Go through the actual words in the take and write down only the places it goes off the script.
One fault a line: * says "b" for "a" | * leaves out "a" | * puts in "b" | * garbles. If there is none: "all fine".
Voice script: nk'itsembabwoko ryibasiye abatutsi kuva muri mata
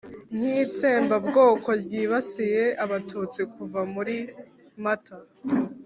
all fine